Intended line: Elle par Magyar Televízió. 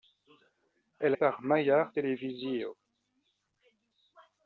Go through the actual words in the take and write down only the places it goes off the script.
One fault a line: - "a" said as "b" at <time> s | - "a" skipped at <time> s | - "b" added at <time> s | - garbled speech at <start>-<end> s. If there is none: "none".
none